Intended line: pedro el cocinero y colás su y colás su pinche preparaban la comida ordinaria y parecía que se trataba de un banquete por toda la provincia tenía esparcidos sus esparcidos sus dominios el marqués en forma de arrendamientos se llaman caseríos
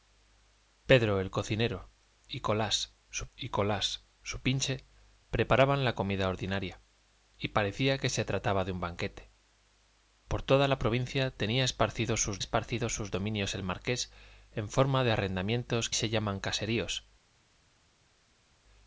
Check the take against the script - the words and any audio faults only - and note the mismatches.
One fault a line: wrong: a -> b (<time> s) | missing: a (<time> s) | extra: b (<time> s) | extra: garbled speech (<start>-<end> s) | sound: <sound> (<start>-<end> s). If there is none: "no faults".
no faults